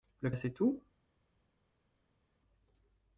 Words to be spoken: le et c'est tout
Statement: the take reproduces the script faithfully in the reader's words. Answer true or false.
true